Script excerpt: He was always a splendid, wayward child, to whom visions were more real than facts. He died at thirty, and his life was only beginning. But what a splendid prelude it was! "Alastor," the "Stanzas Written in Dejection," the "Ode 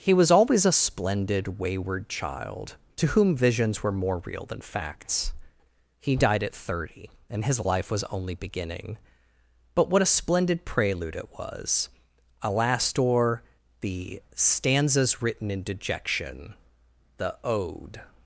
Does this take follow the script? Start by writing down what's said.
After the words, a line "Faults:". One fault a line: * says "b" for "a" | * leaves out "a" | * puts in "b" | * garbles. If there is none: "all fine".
He was always a splendid, wayward child, to whom visions were more real than facts. He died at thirty, and his life was only beginning. But what a splendid prelude it was! "Alastor," the "Stanzas Written in Dejection," the "Ode
Faults:
all fine